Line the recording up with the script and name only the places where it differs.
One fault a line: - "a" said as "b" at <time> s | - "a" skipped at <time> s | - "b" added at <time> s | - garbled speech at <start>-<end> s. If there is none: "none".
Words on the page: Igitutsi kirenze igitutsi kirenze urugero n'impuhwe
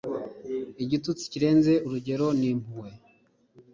- "igitutsi kirenze" skipped at 1.7 s